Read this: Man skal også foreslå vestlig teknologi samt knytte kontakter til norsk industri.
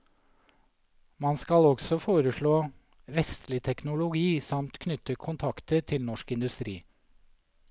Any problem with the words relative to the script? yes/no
no